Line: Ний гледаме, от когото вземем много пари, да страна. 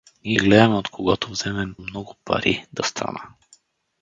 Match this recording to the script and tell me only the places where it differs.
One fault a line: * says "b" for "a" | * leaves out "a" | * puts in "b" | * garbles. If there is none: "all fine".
all fine